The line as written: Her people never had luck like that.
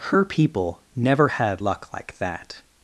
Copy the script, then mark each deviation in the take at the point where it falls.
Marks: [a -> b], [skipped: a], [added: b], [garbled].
Her people never had luck like that.